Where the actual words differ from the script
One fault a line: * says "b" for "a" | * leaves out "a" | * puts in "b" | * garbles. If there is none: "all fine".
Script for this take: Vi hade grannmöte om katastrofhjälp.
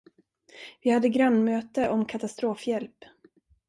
all fine